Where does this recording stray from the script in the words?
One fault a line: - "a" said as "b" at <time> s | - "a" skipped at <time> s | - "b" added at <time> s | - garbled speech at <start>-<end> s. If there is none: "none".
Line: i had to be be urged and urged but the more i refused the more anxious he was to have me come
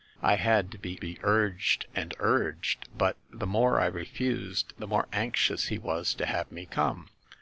none